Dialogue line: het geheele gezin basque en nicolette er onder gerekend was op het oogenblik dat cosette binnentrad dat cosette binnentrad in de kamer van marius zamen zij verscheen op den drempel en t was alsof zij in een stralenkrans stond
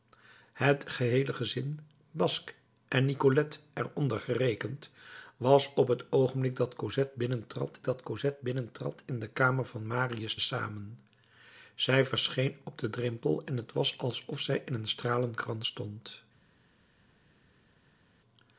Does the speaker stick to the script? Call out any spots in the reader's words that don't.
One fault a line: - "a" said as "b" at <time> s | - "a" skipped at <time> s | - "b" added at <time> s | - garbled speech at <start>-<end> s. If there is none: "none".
none